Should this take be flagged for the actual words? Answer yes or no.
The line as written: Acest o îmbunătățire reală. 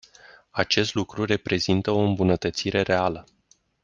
yes